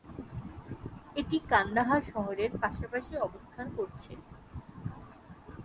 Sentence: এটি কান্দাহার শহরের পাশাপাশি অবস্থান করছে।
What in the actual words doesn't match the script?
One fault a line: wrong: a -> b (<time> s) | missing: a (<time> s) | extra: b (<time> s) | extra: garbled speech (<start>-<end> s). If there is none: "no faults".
no faults